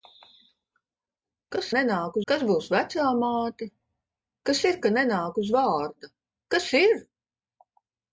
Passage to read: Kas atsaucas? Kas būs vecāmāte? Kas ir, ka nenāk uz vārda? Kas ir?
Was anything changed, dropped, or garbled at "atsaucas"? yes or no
yes